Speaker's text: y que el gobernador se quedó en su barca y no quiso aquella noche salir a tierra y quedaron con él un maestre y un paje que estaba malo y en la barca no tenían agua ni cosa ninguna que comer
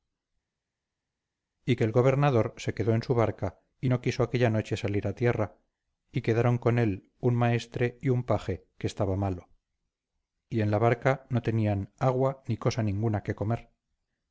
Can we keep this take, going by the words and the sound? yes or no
yes